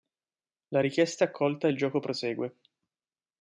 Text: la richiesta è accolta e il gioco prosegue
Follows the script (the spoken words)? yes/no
yes